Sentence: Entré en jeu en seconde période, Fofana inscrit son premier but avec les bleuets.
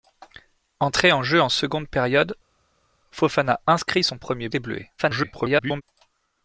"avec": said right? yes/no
no